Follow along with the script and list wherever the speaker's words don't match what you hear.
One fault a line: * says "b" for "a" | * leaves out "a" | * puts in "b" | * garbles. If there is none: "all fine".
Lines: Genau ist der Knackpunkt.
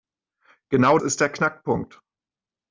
all fine